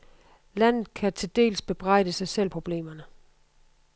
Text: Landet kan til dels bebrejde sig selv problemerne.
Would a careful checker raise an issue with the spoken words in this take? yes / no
no